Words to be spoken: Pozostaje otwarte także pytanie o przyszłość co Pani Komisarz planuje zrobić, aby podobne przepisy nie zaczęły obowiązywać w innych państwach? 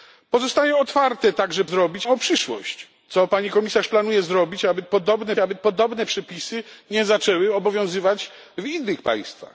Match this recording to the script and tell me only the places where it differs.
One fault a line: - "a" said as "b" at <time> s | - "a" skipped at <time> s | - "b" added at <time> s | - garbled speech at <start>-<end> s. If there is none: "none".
- "pytanie" said as "zrobić" at 1.6 s
- "aby podobne" added at 5.4 s